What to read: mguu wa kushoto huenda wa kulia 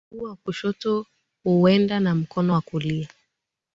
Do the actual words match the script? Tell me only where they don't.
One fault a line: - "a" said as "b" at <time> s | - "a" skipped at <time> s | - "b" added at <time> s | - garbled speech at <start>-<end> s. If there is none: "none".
- "na mkono" added at 2.0 s